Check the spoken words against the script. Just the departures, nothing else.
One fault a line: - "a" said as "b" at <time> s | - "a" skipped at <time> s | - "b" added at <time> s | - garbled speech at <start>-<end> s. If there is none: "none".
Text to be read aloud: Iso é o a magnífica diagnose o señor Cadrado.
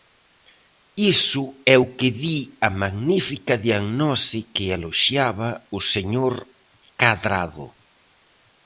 - "que di" added at 2.0 s
- "que eloxiaba" added at 4.5 s